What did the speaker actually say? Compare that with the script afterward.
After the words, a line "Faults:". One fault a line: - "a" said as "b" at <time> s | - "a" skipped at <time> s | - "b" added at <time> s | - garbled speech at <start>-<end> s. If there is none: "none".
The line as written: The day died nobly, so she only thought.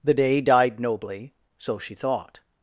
The day died nobly, so she thought.
Faults:
- "only" skipped at 1.9 s